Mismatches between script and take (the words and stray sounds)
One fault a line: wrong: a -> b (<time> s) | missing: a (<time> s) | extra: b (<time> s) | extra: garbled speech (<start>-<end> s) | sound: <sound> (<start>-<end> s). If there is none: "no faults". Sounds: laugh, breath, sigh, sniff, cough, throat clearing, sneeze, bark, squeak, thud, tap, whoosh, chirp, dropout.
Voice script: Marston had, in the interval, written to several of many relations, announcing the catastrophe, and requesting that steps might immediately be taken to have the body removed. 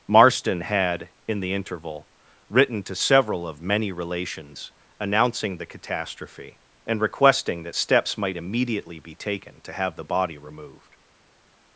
no faults